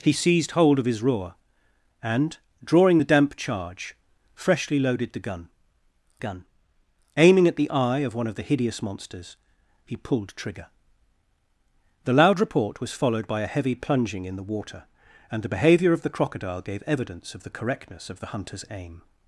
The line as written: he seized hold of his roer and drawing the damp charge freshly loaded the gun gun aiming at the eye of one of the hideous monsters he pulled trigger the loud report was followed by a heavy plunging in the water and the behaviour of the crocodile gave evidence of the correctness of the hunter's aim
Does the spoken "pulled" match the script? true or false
true